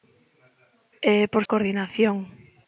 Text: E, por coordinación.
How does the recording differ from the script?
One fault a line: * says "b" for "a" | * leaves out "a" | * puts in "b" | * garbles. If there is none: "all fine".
all fine